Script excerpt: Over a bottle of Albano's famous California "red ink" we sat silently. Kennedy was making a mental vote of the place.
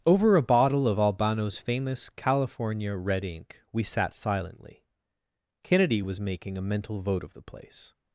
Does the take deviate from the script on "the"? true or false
false